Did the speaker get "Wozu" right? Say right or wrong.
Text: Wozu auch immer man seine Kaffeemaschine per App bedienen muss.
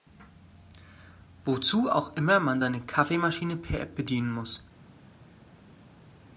right